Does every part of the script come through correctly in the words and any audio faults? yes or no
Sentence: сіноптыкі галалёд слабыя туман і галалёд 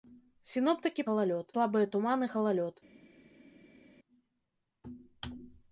yes